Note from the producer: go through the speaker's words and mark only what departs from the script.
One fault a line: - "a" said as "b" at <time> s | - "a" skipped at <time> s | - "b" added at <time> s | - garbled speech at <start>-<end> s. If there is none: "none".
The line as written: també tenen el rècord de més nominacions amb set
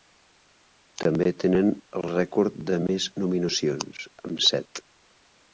none